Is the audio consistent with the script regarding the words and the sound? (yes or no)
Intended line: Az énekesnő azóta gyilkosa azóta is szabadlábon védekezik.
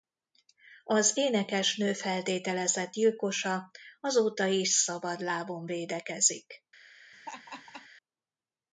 no